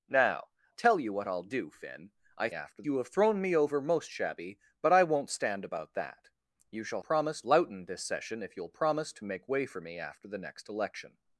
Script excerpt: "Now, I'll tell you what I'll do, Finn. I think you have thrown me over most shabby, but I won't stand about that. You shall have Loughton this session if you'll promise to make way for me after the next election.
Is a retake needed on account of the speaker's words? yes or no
yes